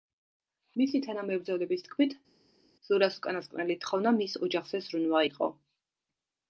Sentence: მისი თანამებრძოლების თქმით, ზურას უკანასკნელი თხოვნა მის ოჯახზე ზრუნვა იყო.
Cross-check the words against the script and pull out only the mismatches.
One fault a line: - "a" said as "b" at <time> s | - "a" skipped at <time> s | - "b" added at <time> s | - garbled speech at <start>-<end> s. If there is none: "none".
none